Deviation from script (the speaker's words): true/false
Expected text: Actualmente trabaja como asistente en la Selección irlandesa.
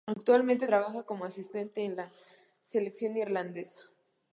false